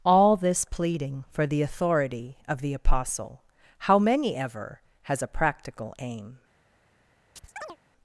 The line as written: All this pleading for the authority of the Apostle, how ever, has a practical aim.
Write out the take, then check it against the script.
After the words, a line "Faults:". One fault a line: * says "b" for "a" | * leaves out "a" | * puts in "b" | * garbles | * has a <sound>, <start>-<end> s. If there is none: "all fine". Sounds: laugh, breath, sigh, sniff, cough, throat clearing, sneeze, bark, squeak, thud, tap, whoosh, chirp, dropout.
All this pleading for the authority of the Apostle, how many ever, has a practical aim.
Faults:
* puts in "many"
* has a chirp, 7.4-7.8 s